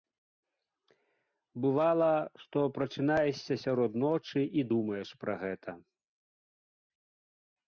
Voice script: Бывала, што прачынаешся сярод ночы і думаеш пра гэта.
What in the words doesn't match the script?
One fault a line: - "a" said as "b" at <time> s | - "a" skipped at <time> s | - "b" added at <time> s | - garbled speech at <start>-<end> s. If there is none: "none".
none